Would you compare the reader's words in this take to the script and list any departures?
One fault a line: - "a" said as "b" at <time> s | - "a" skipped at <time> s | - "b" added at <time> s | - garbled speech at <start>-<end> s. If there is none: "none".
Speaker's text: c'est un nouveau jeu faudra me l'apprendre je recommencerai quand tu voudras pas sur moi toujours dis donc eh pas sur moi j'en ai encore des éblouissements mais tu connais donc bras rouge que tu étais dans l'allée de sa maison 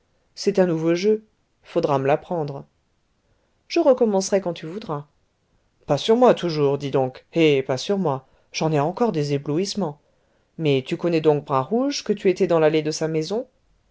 none